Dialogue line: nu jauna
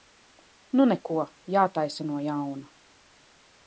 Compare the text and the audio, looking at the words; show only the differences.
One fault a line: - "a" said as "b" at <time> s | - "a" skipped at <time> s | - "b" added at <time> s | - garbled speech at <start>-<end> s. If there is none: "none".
- "neko jātaisa no" added at 0.9 s